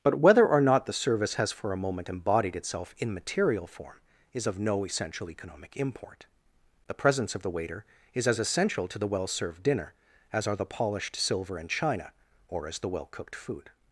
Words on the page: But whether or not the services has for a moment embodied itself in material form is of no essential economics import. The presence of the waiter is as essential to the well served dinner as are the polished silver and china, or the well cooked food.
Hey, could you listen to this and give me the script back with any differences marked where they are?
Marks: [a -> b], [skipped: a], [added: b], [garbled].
But whether or not the [services -> service] has for a moment embodied itself in material form is of no essential [economics -> economic] import. The presence of the waiter is as essential to the well served dinner as are the polished silver and china, or [added: as] the well cooked food.